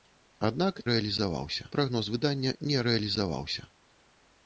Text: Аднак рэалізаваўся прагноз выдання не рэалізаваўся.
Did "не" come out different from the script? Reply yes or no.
no